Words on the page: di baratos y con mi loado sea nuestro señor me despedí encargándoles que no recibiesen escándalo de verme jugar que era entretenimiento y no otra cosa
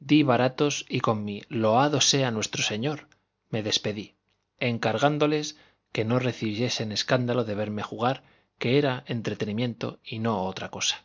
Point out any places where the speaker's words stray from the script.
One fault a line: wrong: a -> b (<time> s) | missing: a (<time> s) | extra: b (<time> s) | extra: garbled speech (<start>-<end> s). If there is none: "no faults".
no faults